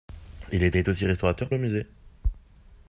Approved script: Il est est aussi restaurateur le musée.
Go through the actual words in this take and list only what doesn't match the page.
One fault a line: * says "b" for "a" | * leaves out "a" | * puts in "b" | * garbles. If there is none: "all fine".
all fine